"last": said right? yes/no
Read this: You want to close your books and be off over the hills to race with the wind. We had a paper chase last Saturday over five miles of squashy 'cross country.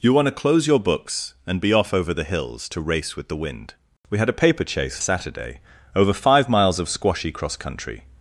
no